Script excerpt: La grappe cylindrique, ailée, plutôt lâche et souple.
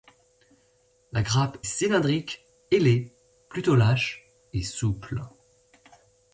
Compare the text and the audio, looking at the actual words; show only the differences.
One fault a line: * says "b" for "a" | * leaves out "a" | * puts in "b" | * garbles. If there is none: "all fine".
all fine